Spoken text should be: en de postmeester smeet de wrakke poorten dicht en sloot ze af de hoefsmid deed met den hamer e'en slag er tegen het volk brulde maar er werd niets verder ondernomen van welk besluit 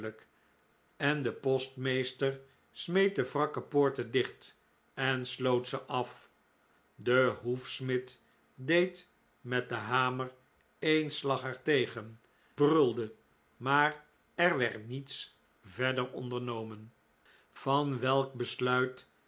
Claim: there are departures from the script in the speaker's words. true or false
true